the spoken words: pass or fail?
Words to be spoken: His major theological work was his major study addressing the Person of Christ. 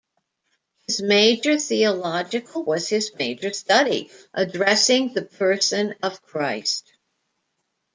fail